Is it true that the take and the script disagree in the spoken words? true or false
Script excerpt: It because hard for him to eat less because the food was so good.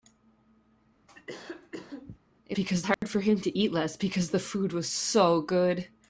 false